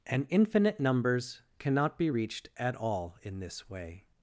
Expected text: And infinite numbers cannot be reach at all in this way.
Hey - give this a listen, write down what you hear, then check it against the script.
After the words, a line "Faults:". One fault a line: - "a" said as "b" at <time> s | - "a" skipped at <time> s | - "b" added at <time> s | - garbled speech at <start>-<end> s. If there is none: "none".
And infinite numbers cannot be reached at all in this way.
Faults:
- "reach" said as "reached" at 2.1 s